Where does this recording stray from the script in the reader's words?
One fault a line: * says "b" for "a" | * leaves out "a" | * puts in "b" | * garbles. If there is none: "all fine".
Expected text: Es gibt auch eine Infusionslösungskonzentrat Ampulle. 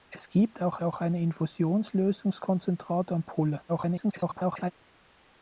* puts in "auch"
* garbles